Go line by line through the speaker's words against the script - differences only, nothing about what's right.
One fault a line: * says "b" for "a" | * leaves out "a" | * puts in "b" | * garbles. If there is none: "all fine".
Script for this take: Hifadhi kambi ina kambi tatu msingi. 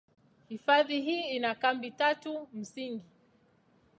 * says "hii" for "kambi"